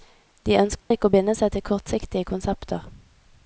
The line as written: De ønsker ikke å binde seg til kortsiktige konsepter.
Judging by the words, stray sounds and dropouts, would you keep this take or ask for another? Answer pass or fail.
fail